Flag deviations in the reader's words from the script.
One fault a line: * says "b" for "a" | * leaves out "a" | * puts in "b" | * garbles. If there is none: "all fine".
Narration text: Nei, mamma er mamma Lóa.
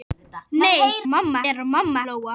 all fine